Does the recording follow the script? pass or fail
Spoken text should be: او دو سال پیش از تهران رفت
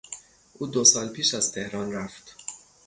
pass